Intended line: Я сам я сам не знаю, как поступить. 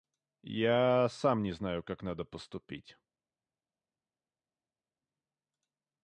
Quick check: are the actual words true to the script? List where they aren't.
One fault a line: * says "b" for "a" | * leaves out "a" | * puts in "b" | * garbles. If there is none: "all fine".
* leaves out "я сам"
* puts in "надо"